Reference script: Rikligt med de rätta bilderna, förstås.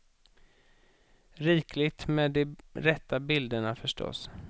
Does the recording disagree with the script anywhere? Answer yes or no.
no